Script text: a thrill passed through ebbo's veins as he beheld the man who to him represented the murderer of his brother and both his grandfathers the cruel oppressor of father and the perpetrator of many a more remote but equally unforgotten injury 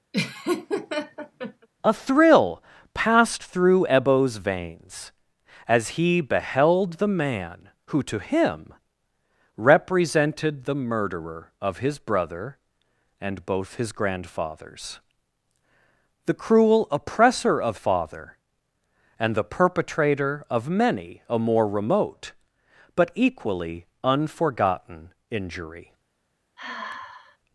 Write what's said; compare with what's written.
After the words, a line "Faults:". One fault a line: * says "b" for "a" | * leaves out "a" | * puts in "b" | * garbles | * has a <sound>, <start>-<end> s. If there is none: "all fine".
a thrill passed through ebbo's veins as he beheld the man who to him represented the murderer of his brother and both his grandfathers the cruel oppressor of father and the perpetrator of many a more remote but equally unforgotten injury
Faults:
* has a laugh, 0.1-1.7 s
* has a sigh, 26.6-27.4 s